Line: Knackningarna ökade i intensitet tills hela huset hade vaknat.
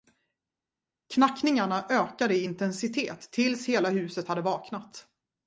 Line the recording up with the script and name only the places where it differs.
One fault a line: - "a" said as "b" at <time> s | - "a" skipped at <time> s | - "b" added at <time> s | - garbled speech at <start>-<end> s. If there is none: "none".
none